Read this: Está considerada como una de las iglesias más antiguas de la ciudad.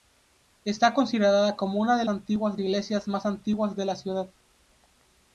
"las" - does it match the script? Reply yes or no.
no